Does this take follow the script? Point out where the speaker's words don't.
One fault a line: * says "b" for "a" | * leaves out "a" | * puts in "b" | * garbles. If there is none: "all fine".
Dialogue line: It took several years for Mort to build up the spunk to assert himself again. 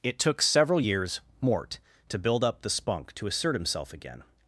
* leaves out "for"